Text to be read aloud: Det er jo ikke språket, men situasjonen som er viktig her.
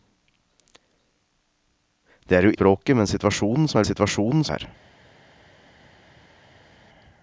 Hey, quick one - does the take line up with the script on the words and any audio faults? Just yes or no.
no